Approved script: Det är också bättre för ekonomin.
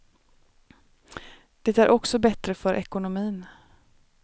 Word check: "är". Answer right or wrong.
right